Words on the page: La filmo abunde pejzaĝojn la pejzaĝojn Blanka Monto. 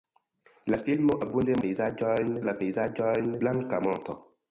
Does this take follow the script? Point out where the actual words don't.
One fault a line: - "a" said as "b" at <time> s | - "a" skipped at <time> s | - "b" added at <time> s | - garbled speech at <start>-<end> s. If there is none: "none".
none